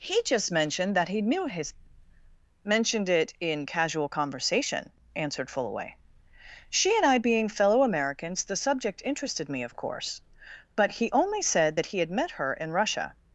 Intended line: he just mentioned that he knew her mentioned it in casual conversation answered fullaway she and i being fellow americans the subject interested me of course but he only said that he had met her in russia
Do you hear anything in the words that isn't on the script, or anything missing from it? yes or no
yes